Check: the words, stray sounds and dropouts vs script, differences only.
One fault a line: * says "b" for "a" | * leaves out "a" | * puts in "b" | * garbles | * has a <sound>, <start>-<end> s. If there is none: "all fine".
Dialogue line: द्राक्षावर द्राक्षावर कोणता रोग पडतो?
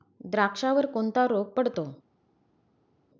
* leaves out "द्राक्षावर"